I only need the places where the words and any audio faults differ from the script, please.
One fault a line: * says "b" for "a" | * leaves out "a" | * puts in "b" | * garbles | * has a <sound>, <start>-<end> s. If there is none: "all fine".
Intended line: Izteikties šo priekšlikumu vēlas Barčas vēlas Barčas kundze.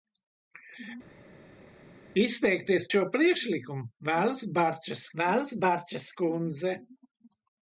all fine